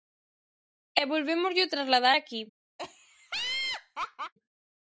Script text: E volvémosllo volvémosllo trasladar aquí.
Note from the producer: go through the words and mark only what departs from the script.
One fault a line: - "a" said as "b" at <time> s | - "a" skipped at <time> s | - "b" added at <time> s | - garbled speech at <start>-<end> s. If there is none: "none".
- "volvémosllo" skipped at 1.7 s